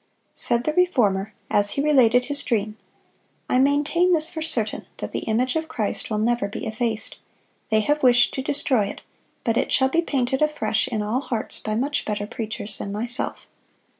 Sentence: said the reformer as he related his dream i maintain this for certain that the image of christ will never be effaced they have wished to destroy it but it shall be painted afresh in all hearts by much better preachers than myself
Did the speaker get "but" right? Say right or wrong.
right